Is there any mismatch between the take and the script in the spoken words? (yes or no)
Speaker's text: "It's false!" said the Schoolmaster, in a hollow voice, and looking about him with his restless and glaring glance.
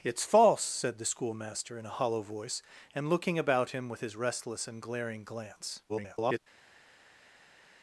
yes